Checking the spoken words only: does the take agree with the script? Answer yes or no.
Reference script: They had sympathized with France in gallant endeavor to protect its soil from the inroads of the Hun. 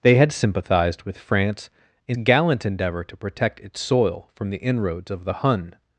yes